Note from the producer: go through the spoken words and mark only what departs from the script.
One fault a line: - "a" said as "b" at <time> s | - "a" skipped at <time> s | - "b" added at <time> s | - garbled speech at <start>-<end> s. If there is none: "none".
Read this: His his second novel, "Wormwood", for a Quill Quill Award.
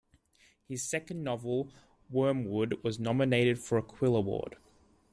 - "his" skipped at 0.8 s
- "was nominated" added at 2.8 s
- "Quill" skipped at 4.2 s